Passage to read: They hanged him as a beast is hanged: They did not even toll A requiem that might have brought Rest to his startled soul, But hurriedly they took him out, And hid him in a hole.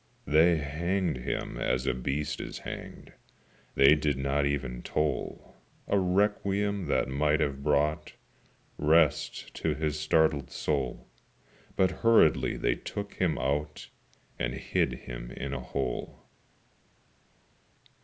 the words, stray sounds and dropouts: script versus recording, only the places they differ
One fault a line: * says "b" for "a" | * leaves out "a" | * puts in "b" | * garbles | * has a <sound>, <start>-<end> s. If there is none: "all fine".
all fine